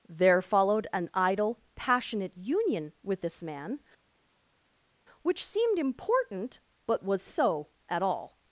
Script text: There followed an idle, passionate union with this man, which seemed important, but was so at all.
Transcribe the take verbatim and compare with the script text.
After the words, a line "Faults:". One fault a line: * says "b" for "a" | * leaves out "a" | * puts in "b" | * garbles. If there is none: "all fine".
There followed an idle, passionate union with this man, which seemed important, but was so at all.
Faults:
all fine